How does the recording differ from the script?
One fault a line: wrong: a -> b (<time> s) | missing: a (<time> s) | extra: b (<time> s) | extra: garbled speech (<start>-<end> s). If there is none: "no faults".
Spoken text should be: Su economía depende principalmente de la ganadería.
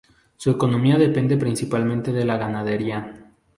no faults